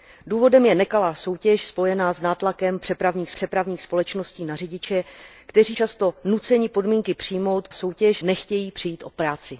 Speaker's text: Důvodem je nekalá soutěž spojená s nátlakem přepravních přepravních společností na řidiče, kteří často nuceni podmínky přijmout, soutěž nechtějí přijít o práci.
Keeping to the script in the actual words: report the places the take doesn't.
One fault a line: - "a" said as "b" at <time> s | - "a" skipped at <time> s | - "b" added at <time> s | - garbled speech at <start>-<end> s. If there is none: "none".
none